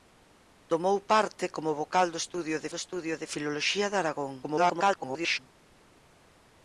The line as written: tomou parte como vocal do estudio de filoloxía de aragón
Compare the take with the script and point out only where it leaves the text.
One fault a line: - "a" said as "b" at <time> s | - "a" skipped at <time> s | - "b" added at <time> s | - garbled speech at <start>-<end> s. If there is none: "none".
- "do estudio de" added at 2.7 s
- garbled speech at 4.4-5.4 s